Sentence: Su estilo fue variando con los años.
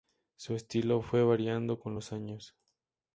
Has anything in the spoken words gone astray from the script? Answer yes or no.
no